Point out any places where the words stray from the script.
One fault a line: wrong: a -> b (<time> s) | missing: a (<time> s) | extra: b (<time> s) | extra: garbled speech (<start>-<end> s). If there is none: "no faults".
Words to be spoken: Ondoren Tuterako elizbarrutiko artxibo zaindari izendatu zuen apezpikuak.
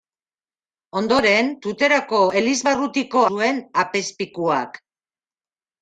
missing: artxibo zaindari izendatu (3.2 s)